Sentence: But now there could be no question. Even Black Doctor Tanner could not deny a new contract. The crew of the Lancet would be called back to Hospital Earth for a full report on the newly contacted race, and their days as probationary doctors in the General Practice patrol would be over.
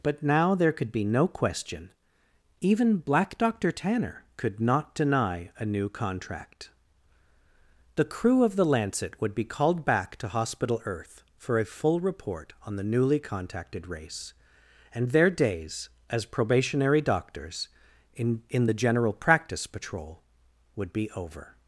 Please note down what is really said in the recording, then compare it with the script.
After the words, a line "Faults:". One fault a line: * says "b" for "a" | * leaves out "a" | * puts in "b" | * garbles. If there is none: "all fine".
But now there could be no question. Even Black Doctor Tanner could not deny a new contract. The crew of the Lancet would be called back to Hospital Earth for a full report on the newly contacted race, and their days as probationary doctors in in the General Practice patrol would be over.
Faults:
* puts in "in"